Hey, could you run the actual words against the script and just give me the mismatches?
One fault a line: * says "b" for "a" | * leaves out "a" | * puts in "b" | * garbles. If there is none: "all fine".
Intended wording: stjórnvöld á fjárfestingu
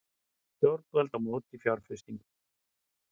* puts in "móti"